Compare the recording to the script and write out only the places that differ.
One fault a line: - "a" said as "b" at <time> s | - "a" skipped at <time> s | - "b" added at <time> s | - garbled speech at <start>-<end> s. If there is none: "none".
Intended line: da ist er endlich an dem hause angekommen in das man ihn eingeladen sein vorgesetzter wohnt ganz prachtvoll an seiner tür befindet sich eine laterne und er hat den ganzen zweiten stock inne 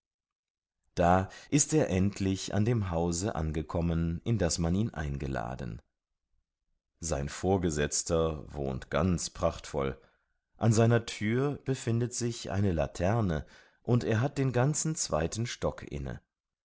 none